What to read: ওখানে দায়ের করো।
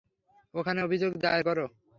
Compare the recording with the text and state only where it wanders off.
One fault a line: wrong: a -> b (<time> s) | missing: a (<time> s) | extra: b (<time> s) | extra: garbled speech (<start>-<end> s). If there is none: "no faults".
extra: অভিযোগ (0.8 s)